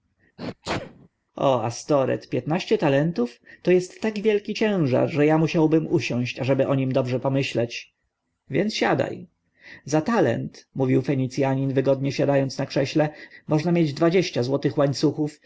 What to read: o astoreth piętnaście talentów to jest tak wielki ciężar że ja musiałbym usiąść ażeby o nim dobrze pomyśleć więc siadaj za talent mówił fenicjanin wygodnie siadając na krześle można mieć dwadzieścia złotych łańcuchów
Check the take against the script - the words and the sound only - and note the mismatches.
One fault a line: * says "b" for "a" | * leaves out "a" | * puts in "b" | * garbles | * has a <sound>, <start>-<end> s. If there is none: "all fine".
* has a sneeze, 0.4-1.1 s